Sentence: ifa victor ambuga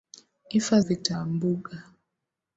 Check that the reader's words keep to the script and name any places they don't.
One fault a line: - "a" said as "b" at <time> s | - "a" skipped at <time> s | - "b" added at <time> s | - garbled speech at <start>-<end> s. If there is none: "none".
none